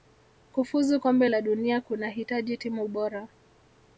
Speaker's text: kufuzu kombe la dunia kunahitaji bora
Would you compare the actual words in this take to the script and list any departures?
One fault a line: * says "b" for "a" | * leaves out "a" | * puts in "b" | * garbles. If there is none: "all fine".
* puts in "timu"